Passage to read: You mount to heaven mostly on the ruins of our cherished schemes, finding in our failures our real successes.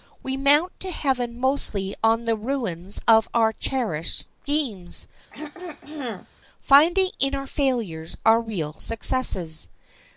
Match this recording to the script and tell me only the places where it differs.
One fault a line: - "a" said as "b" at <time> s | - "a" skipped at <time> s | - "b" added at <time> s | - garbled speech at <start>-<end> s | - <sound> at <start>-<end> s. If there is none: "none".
- "You" said as "We" at 0.2 s
- throat clearing at 5.3-6.3 s